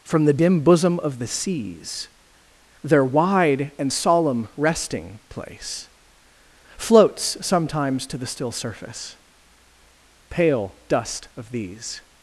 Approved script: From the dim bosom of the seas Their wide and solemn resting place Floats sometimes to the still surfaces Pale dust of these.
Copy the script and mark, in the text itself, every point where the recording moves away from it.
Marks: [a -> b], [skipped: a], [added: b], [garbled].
From the dim bosom of the seas Their wide and solemn resting place Floats sometimes to the still [surfaces -> surface] Pale dust of these.